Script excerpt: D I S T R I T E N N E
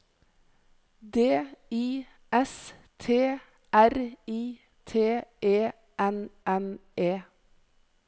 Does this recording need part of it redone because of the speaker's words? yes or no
no